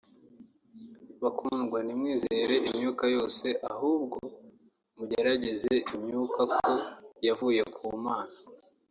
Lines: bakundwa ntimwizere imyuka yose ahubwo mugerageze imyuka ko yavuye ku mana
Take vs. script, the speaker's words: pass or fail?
pass